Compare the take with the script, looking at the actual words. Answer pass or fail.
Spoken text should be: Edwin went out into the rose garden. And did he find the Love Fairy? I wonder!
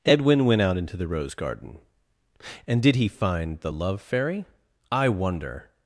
pass